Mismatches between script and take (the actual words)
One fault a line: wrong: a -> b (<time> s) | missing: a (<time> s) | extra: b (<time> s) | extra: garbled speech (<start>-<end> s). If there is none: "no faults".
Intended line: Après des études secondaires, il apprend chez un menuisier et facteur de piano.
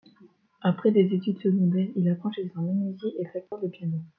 no faults